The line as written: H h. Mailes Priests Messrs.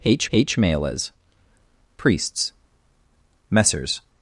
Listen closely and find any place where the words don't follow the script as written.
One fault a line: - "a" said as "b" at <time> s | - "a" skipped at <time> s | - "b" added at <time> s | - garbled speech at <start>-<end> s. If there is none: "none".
none